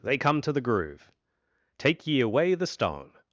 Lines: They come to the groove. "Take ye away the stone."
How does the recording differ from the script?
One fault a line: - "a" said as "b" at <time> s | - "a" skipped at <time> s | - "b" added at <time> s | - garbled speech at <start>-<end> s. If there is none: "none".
none